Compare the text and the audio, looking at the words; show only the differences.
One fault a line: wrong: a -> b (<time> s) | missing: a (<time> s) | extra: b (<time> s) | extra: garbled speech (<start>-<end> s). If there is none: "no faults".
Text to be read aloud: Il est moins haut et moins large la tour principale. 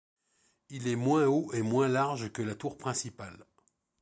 extra: que (2.3 s)